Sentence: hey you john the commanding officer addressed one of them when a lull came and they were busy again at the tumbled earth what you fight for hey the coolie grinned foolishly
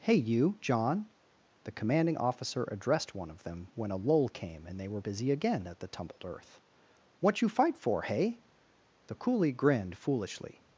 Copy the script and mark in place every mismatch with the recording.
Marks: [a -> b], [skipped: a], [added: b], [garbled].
hey you john the commanding officer addressed one of them when a lull came and they were busy again at the tumbled earth what you fight for hey the coolie grinned foolishly